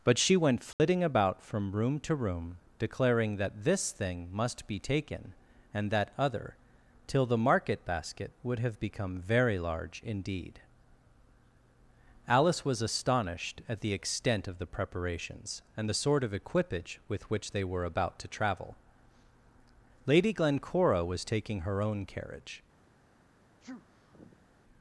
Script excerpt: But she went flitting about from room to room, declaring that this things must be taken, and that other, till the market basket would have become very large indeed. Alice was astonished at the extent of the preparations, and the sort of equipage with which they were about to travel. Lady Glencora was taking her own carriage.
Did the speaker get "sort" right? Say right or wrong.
right